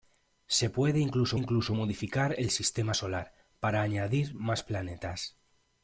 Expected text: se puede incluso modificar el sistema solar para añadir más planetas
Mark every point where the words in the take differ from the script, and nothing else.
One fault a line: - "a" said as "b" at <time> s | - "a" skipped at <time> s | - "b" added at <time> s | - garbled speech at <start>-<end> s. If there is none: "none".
- "incluso" added at 1.3 s